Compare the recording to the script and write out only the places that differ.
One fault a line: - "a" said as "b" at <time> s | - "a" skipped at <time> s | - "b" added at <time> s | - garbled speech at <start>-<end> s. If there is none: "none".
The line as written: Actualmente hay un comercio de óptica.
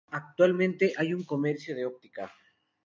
none